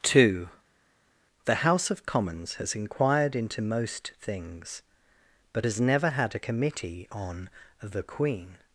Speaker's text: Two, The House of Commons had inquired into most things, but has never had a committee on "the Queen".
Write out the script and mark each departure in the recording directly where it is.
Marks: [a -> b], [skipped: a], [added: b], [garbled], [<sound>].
Two, The House of Commons [had -> has] inquired into most things, but has never had a committee on "the Queen".